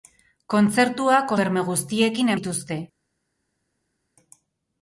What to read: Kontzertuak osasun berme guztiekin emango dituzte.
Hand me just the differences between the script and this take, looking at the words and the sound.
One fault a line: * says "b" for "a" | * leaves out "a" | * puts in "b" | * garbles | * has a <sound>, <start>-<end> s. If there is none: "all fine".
* leaves out "osasun"
* leaves out "emango"